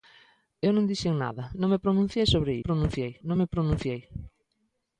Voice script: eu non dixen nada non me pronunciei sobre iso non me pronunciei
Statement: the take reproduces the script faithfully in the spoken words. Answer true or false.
false